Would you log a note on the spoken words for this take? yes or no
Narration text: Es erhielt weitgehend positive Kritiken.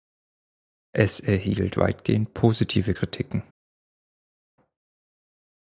no